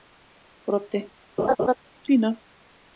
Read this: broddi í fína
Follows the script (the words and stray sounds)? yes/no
no